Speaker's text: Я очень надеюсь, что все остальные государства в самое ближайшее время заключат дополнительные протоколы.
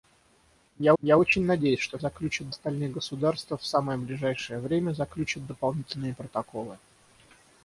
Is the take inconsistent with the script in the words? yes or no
yes